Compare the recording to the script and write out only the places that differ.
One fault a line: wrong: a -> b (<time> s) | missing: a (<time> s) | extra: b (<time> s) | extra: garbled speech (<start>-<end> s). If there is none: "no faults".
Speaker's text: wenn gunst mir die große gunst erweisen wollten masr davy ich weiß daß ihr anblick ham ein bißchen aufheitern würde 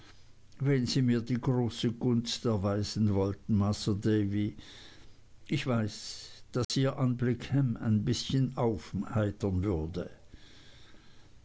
wrong: gunst -> sie (0.9 s)